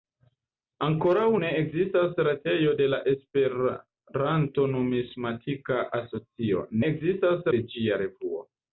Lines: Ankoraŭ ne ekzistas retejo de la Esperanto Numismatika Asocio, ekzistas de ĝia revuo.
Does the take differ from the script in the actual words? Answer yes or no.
no